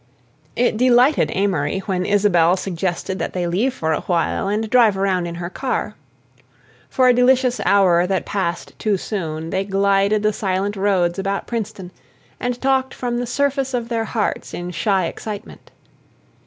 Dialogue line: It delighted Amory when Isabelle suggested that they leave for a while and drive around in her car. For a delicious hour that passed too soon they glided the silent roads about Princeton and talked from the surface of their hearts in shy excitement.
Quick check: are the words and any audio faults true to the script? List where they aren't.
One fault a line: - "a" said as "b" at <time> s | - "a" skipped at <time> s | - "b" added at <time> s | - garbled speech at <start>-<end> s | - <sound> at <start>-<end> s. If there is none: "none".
none